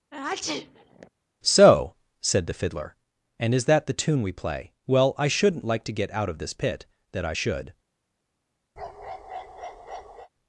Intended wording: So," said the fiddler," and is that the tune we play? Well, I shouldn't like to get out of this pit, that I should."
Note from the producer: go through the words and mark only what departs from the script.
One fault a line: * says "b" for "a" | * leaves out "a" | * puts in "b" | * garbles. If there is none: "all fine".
all fine